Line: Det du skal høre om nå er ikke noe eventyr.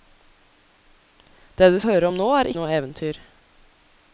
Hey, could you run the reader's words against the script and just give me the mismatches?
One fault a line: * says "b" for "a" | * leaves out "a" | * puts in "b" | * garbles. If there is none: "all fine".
* leaves out "skal"
* leaves out "ikke"